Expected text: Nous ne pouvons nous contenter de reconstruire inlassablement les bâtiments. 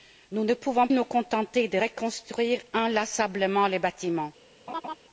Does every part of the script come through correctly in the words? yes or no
yes